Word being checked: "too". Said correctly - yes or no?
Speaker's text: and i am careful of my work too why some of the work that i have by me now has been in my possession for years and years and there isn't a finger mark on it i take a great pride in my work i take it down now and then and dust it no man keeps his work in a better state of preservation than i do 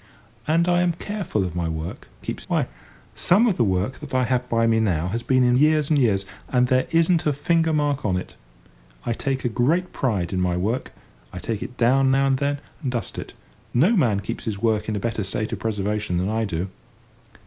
no